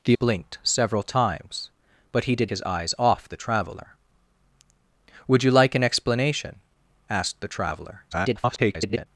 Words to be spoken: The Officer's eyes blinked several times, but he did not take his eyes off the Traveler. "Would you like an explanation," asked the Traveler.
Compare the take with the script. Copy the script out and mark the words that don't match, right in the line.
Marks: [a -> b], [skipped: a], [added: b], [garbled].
The [skipped: Officer's eyes] blinked several times, but he did [skipped: not take] his eyes off the Traveler. "Would you like an explanation," asked the Traveler. [garbled]